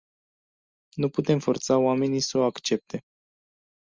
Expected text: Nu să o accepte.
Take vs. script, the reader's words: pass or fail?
fail